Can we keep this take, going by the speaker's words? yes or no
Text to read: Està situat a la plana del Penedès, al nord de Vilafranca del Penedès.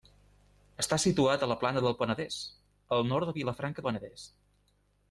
no